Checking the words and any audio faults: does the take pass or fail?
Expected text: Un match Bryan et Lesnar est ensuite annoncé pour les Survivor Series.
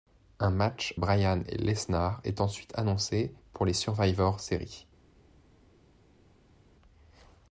pass